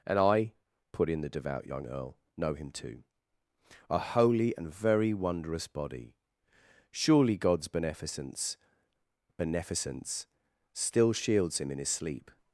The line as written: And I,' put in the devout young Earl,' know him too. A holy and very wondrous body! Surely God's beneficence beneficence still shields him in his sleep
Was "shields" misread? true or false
false